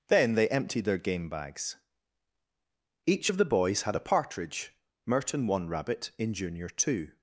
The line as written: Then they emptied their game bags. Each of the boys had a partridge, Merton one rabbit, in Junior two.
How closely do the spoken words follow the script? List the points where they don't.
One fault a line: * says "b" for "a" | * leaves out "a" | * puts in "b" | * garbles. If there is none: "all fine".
all fine